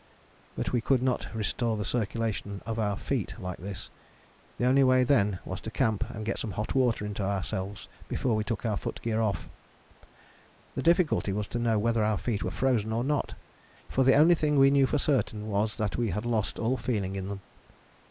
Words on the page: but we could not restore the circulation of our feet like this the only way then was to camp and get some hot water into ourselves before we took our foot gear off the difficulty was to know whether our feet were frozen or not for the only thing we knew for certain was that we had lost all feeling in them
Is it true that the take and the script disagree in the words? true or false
false